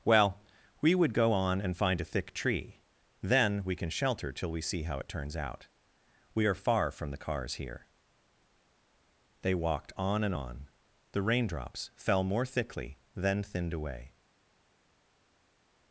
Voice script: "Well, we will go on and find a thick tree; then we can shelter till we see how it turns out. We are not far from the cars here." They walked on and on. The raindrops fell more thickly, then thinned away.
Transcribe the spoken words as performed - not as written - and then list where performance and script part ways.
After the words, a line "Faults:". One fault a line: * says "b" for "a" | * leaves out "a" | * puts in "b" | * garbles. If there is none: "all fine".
"Well, we would go on and find a thick tree; then we can shelter till we see how it turns out. We are far from the cars here." They walked on and on. The raindrops fell more thickly, then thinned away.
Faults:
* says "would" for "will"
* leaves out "not"